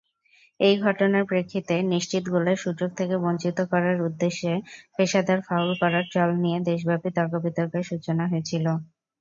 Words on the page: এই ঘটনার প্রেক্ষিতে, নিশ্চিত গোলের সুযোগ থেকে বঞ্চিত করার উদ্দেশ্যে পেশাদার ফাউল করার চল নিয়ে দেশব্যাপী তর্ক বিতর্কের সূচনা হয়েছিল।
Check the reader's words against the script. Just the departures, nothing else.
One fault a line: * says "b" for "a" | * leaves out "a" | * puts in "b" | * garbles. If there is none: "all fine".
all fine